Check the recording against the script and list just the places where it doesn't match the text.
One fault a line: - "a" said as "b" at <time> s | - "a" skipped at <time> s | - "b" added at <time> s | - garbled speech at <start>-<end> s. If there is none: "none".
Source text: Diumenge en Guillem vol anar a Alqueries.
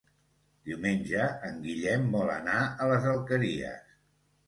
- "les" added at 2.9 s